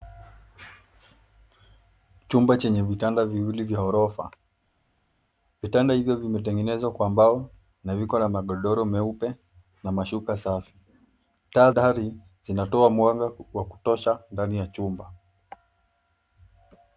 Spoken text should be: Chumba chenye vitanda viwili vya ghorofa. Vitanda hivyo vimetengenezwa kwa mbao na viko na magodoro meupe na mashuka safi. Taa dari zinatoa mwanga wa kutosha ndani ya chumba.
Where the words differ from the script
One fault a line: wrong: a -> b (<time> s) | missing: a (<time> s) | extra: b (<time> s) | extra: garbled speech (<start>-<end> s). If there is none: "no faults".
no faults